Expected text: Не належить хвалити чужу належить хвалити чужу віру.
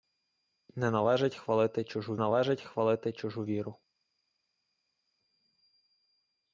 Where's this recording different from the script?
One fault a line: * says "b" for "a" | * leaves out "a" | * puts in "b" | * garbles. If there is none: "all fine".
all fine